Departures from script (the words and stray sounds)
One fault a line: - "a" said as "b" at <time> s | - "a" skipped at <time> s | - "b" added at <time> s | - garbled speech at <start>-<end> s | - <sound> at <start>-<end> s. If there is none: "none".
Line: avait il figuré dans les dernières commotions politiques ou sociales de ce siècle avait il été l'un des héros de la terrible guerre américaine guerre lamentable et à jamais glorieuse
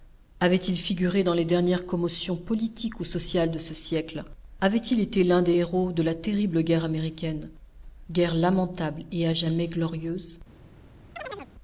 - chirp at 11.2-11.5 s